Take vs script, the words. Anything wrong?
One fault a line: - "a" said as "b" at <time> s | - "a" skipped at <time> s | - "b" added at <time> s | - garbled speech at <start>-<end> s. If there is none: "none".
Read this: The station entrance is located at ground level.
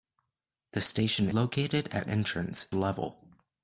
- "entrance is" skipped at 1.3 s
- "ground" said as "entrance" at 2.0 s